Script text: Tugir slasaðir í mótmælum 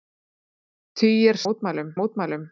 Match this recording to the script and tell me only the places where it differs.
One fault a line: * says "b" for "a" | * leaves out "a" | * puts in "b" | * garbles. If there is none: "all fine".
* says "mótmælum" for "slasaðir"